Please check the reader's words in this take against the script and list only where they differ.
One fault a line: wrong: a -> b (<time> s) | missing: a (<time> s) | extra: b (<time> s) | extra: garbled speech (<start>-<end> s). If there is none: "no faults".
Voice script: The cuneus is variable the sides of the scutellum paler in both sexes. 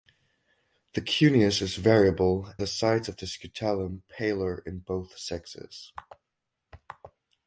no faults